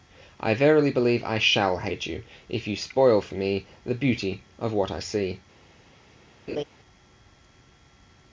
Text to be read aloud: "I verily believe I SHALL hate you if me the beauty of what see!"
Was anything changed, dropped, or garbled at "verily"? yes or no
no